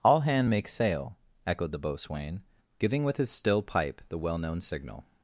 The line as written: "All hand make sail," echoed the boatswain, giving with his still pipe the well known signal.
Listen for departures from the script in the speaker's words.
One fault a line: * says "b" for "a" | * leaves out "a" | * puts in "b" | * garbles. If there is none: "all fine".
all fine